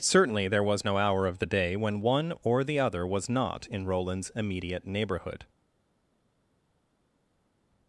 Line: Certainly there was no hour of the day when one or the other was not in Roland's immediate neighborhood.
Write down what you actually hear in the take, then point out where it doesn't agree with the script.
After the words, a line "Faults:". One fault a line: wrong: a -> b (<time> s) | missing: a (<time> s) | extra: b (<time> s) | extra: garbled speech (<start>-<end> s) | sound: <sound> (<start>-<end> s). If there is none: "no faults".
Certainly there was no hour of the day when one or the other was not in Roland's immediate neighborhood.
Faults:
no faults